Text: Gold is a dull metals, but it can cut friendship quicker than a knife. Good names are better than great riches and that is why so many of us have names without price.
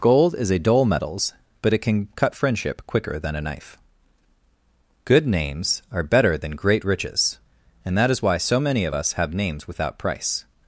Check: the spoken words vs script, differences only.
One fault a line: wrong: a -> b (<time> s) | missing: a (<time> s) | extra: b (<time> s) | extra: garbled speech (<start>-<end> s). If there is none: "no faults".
no faults